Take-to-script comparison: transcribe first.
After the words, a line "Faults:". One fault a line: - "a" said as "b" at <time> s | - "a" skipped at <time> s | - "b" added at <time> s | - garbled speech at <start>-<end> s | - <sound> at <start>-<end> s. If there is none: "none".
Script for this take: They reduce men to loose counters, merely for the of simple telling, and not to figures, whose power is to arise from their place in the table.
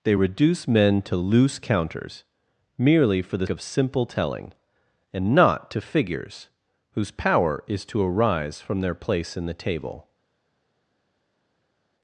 They reduce men to loose counters, merely for the of simple telling, and not to figures, whose power is to arise from their place in the table.
Faults:
none